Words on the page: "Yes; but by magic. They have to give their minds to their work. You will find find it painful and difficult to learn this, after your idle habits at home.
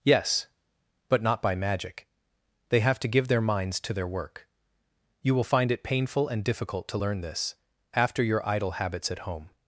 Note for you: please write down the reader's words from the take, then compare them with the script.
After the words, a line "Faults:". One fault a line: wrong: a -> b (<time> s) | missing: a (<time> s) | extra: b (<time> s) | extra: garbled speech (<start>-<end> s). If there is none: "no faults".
"Yes; but not by magic. They have to give their minds to their work. You will find it painful and difficult to learn this, after your idle habits at home.
Faults:
extra: not (1.2 s)
missing: find (5.7 s)